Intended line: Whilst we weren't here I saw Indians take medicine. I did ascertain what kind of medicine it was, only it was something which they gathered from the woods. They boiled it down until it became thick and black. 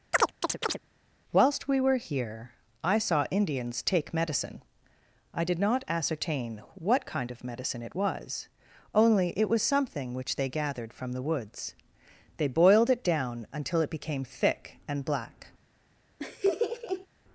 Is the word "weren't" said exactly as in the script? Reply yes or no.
no